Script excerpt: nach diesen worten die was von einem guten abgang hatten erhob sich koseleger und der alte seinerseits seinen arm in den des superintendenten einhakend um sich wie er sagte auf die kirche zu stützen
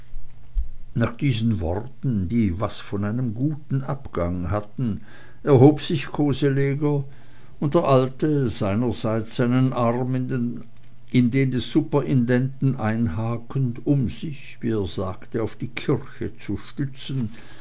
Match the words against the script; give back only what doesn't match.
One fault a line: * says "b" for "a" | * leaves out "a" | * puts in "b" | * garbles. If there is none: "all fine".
all fine